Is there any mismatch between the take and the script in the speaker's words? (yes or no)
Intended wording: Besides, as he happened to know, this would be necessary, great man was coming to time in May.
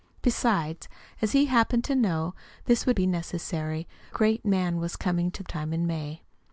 no